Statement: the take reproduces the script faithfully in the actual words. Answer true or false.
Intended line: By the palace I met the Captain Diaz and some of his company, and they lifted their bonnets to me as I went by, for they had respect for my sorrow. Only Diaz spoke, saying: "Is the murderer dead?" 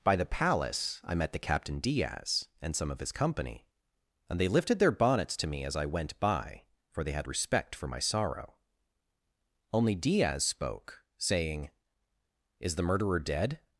true